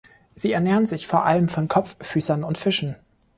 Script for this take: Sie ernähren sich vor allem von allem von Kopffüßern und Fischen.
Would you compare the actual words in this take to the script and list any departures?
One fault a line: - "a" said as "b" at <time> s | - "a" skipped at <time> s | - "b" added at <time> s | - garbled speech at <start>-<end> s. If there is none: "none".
- "allem von" skipped at 1.7 s